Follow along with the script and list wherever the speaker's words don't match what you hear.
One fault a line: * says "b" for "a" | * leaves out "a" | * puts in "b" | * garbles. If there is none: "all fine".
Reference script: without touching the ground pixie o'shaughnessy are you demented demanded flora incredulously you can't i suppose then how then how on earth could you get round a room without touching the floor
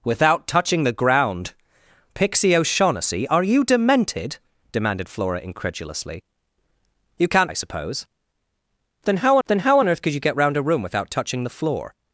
all fine